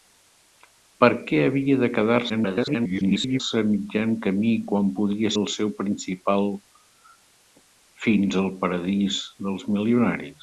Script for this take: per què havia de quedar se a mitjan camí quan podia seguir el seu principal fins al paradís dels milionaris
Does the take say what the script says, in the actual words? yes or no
no